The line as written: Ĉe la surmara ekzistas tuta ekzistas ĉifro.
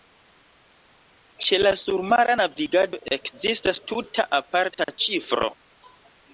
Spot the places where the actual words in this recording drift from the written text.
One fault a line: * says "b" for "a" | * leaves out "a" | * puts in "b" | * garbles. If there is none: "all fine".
* puts in "navigado"
* says "aparta" for "ekzistas"